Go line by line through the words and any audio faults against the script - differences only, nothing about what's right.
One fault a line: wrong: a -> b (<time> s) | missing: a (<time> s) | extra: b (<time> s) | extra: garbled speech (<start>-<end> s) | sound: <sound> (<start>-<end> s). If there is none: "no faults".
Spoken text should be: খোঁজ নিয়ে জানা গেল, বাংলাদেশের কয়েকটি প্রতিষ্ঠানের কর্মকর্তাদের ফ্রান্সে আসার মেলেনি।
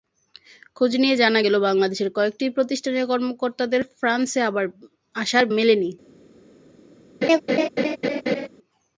sound: laugh (7.2-8.5 s)